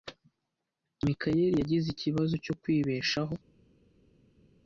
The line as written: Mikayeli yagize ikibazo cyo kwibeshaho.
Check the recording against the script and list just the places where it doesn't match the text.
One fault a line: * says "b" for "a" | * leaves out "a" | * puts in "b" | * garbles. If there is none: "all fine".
all fine